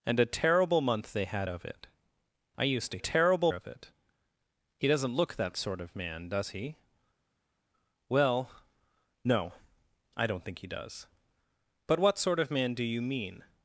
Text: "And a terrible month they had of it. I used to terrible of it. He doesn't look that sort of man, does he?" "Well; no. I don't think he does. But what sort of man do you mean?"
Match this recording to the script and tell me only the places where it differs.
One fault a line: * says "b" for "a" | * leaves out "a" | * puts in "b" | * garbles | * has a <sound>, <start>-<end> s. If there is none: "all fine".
all fine